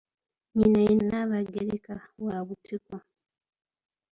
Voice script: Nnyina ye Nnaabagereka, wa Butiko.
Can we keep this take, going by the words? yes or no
yes